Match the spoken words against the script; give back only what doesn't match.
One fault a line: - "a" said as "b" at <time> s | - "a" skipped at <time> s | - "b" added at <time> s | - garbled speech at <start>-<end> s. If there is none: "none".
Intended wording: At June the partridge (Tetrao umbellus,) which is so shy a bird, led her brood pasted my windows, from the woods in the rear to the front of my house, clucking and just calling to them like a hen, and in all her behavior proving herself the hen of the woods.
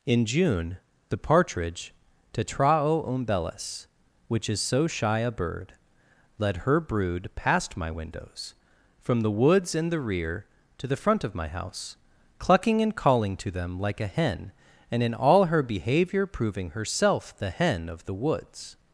- "At" said as "In" at 0.1 s
- "pasted" said as "past" at 7.3 s
- "just" skipped at 13.0 s